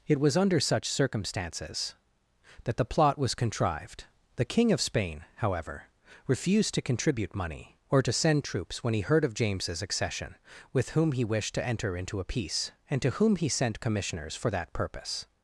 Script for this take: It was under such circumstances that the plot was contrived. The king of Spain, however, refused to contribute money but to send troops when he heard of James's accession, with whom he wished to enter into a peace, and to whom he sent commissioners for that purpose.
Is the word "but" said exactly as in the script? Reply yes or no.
no